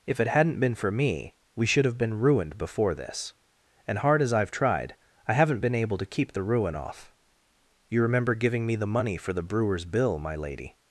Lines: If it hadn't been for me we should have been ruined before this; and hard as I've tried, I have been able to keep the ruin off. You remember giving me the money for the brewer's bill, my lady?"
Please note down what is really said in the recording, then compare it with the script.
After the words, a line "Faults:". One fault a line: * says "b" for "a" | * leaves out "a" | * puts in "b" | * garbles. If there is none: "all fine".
If it hadn't been for me we should have been ruined before this; and hard as I've tried, I haven't been able to keep the ruin off. You remember giving me the money for the brewer's bill, my lady?"
Faults:
* says "haven't" for "have"